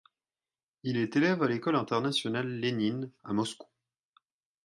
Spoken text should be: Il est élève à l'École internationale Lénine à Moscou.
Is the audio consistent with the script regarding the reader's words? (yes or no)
yes